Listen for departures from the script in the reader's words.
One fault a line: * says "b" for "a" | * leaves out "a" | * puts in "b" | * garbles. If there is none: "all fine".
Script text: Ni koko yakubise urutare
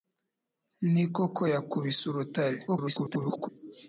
* garbles